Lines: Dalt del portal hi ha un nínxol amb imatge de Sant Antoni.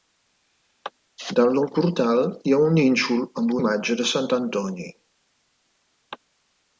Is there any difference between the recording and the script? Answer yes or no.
no